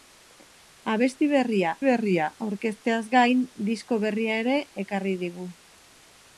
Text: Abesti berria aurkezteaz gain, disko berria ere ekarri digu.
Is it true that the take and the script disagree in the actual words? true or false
true